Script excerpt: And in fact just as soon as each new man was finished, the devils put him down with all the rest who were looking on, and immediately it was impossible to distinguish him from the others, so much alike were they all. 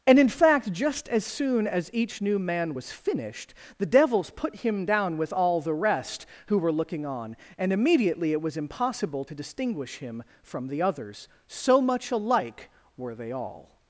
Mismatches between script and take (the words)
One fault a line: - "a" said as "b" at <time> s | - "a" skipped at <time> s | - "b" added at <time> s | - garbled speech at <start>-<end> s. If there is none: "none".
none